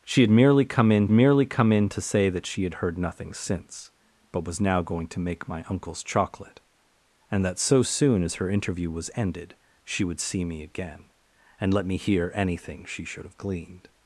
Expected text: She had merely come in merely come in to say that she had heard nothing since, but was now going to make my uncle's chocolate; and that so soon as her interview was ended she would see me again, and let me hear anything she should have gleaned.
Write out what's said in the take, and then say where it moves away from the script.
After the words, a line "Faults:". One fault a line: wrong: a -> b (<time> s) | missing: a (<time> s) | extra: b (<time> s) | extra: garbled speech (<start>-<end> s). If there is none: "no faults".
She had merely come in merely come in to say that she had heard nothing since, but was now going to make my uncle's chocolate; and that so soon as her interview was ended she would see me again, and let me hear anything she should have gleaned.
Faults:
no faults